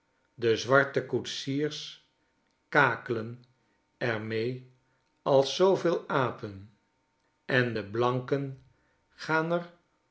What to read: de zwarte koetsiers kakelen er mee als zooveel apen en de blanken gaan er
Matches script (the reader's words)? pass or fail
pass